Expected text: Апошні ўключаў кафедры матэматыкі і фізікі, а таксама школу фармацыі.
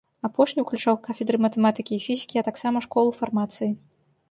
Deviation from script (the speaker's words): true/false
false